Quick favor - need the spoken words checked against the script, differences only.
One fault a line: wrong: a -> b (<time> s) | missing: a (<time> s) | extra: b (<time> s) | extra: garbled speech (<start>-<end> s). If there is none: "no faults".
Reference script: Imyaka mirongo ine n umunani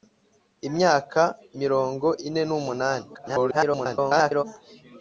extra: garbled speech (3.1-4.4 s)